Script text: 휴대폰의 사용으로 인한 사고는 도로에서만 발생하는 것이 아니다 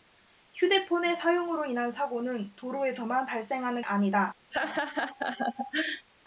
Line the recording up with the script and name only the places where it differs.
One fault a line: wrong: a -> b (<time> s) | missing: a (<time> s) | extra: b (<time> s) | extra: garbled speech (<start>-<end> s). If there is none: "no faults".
missing: 것이 (3.8 s)